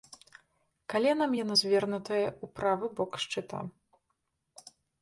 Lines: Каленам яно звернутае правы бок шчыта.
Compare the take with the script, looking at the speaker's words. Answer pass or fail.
fail